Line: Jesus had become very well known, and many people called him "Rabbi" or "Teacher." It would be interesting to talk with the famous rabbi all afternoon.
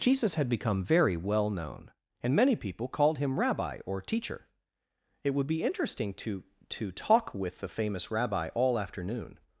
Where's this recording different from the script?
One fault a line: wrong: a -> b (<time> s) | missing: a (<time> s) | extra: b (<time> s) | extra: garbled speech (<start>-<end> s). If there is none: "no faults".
extra: to (6.7 s)